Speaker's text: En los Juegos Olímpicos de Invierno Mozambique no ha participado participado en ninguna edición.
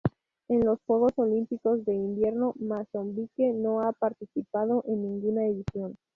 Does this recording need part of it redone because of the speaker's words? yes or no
yes